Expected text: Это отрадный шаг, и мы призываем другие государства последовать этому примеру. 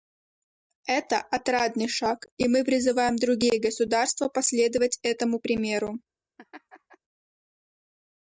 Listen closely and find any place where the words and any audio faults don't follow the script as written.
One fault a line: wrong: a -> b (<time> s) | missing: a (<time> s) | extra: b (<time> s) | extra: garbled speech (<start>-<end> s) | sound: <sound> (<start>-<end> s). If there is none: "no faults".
sound: laugh (6.4-7.0 s)